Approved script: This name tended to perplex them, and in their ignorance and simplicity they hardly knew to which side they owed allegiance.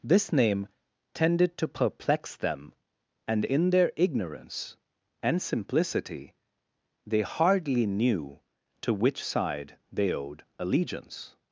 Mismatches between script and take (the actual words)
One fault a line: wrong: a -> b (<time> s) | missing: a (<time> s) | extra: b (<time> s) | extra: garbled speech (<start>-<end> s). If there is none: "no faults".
no faults